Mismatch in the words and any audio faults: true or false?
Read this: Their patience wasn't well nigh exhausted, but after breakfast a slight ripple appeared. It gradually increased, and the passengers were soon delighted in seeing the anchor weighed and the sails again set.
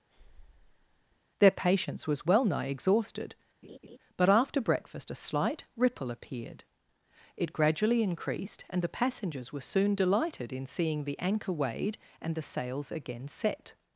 true